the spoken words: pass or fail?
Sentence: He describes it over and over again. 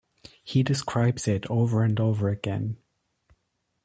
pass